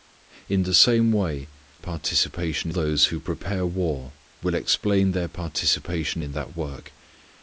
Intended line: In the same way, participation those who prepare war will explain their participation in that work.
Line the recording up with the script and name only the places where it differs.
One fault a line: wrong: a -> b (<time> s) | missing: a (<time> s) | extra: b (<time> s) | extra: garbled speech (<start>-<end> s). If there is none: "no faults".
no faults